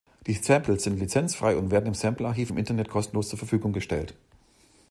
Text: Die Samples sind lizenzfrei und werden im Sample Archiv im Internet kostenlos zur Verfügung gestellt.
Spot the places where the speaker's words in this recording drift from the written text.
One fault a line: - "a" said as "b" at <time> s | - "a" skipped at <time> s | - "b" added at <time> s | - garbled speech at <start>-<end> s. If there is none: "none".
none